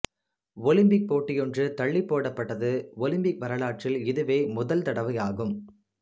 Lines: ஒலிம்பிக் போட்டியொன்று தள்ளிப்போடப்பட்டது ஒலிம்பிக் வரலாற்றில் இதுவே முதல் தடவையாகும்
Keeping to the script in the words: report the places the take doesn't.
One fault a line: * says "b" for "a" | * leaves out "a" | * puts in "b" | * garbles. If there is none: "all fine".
all fine